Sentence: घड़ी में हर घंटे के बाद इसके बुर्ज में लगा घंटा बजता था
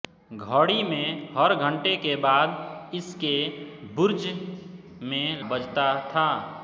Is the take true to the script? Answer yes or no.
no